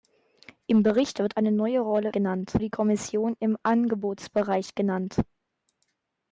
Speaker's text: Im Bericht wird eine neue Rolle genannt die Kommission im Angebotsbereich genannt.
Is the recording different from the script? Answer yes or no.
no